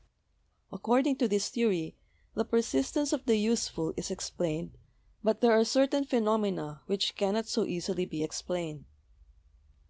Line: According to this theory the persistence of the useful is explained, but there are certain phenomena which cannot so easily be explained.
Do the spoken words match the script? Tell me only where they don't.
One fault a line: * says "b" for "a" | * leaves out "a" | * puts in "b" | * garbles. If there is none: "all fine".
all fine